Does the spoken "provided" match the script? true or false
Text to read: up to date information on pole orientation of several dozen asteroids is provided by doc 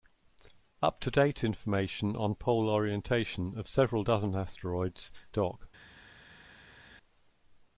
false